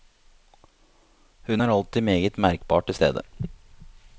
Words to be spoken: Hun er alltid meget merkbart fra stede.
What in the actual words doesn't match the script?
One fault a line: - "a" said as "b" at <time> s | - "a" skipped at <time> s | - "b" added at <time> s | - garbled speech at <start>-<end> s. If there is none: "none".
- "fra" said as "til" at 2.8 s